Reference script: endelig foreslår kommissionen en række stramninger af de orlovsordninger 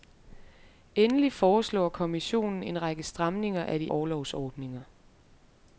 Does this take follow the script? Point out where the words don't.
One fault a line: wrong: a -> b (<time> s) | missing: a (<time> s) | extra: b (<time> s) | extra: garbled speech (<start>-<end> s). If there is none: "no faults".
no faults